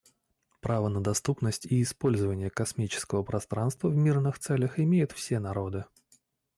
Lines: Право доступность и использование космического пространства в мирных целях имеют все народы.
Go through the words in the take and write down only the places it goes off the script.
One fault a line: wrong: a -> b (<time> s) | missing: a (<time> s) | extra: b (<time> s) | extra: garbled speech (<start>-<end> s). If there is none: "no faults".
extra: на (0.9 s)